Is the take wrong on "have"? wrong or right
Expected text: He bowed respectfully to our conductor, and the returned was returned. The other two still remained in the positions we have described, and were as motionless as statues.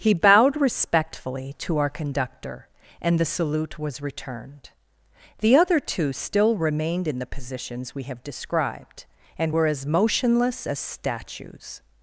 right